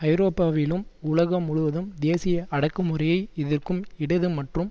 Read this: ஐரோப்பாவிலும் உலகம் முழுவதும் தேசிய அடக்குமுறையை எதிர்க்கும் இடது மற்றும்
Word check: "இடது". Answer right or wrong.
right